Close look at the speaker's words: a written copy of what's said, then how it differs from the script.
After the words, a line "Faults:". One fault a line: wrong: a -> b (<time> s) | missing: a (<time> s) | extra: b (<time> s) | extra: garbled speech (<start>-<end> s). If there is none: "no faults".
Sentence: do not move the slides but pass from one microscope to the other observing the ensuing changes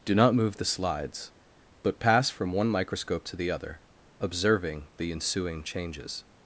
do not move the slides but pass from one microscope to the other observing the ensuing changes
Faults:
no faults